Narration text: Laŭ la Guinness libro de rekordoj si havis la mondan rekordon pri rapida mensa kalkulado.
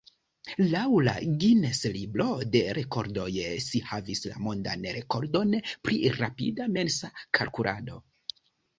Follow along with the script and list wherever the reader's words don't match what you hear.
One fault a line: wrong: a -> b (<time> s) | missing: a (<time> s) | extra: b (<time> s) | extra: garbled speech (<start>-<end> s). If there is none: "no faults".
no faults